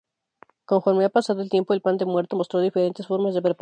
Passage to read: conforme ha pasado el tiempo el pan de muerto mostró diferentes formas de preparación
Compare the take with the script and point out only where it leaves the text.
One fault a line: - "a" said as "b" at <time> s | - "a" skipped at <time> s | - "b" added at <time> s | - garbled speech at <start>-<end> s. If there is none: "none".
none